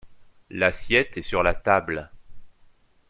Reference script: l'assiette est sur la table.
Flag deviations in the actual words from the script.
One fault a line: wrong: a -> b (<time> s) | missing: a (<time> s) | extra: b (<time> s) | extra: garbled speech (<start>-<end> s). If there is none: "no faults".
no faults